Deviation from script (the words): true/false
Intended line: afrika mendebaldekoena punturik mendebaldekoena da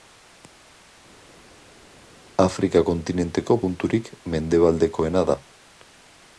true